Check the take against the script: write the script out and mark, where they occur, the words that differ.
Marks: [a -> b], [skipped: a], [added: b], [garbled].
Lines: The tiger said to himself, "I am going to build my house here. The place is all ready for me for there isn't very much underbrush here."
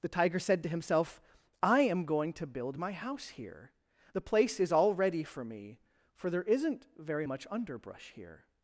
The tiger said to himself, "I am going to build my house here. The place is all ready for me for there isn't very much underbrush here."